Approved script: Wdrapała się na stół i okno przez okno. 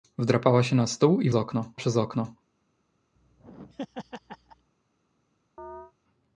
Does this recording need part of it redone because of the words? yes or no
no